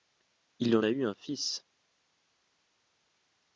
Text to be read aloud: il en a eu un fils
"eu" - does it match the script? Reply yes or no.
yes